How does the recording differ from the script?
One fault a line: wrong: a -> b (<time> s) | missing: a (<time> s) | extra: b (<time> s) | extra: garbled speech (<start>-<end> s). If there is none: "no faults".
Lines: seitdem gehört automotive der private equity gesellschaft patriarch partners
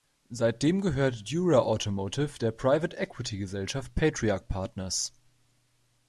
extra: dura (1.3 s)